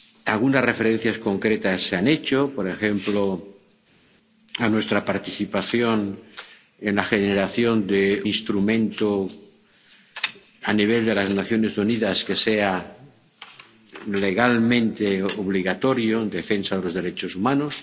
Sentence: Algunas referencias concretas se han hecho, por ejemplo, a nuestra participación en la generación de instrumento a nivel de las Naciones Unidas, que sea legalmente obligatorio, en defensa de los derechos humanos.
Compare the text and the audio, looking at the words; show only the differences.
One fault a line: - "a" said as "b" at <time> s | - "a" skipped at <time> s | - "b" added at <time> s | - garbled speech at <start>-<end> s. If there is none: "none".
none